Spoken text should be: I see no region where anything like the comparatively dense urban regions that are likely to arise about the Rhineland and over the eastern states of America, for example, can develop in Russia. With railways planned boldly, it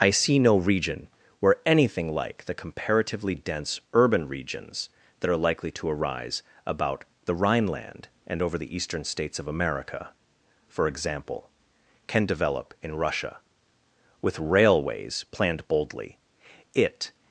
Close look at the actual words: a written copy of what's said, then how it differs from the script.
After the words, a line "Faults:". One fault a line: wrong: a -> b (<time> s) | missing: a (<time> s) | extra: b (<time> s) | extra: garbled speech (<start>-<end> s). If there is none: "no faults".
I see no region where anything like the comparatively dense urban regions that are likely to arise about the Rhineland and over the eastern states of America, for example, can develop in Russia. With railways planned boldly, it
Faults:
no faults